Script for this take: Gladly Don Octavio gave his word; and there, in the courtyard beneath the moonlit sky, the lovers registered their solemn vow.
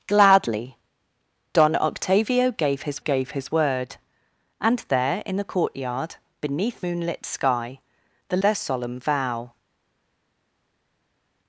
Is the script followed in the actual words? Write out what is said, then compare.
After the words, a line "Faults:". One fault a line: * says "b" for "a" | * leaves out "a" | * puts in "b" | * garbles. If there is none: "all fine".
Gladly Don Octavio gave his gave his word; and there, in the courtyard beneath moonlit sky, the their solemn vow.
Faults:
* puts in "gave his"
* leaves out "the"
* leaves out "lovers registered"